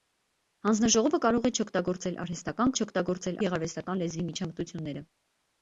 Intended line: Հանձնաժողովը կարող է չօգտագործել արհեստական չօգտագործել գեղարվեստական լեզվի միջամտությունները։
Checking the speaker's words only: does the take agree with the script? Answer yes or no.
yes